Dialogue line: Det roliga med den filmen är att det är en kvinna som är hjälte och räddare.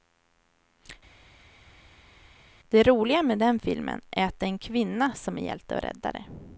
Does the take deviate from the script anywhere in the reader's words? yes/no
no